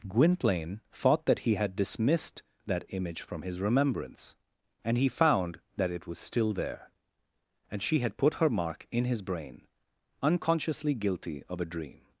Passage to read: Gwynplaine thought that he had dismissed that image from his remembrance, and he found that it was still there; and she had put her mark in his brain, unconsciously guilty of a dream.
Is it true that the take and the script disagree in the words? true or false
false